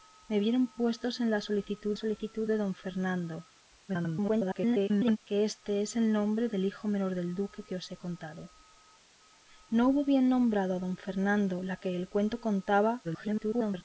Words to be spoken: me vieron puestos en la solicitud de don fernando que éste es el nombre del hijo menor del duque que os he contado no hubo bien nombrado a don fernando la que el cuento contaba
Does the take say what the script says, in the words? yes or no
no